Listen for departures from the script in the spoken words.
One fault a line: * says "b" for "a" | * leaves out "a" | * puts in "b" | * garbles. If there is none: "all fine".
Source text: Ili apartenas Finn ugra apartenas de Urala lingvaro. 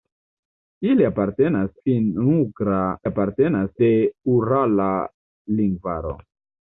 all fine